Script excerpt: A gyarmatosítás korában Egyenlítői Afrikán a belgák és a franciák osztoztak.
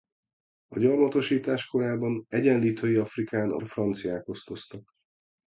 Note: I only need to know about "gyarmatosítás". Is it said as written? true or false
true